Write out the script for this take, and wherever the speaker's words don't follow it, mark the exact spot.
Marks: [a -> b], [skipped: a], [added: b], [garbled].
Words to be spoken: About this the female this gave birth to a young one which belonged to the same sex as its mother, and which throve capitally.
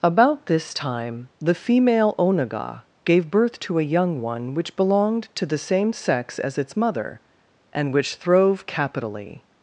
About this [added: time] the female [this -> onaga] gave birth to a young one which belonged to the same sex as its mother, and which throve capitally.